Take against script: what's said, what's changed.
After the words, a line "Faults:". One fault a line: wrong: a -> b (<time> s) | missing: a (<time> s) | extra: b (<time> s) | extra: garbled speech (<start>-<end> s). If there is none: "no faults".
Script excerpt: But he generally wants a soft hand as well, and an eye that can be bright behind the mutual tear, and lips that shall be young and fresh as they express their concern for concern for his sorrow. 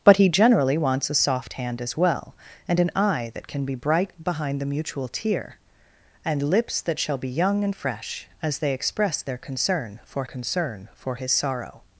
But he generally wants a soft hand as well, and an eye that can be bright behind the mutual tear, and lips that shall be young and fresh as they express their concern for concern for his sorrow.
Faults:
no faults